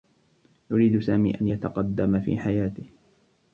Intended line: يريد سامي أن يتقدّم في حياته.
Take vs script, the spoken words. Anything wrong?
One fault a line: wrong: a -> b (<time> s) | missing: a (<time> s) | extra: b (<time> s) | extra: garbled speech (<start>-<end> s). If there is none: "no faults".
no faults